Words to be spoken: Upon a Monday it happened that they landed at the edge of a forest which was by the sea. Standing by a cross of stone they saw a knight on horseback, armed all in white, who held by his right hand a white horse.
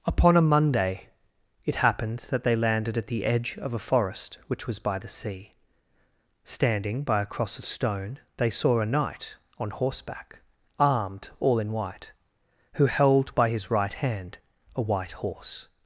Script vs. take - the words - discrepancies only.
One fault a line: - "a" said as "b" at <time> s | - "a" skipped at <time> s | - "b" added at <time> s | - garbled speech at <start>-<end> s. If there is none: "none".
none